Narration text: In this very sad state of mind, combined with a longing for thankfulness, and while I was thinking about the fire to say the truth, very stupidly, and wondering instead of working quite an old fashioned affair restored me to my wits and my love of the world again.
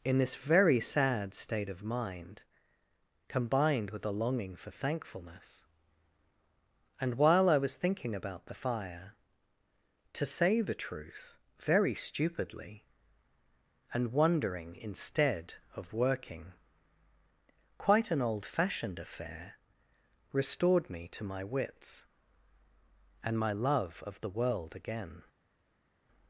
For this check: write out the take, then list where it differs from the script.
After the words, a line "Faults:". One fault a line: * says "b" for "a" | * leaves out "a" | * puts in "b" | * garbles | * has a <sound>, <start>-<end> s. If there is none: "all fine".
In this very sad state of mind, combined with a longing for thankfulness, and while I was thinking about the fire to say the truth, very stupidly, and wondering instead of working quite an old fashioned affair restored me to my wits and my love of the world again.
Faults:
all fine